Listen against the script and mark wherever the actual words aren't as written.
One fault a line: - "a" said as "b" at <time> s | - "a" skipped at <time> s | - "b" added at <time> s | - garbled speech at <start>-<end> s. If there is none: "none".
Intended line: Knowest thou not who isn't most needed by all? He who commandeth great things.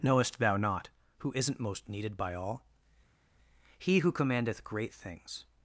none